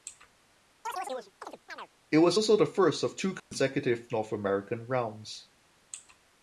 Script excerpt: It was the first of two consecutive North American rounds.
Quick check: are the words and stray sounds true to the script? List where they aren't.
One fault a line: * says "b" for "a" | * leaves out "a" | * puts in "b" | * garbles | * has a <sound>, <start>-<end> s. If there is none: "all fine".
* has a chirp, 0.8-1.9 s
* puts in "also"
* has a dropout, 3.4-3.5 s